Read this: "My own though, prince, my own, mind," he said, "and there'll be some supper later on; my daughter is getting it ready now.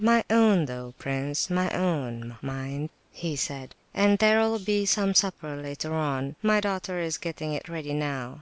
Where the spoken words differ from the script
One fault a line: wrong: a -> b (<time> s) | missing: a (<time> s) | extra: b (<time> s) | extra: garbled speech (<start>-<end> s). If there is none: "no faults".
no faults